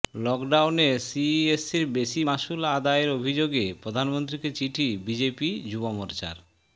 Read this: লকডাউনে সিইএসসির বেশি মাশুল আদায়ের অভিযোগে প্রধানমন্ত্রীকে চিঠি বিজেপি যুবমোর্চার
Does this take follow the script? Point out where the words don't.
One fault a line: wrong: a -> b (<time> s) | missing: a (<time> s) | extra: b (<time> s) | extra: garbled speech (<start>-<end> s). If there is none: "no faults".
no faults